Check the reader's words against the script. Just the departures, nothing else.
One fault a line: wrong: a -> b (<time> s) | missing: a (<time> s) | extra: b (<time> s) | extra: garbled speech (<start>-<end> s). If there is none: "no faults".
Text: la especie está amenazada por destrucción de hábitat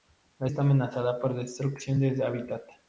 missing: especie (0.5 s)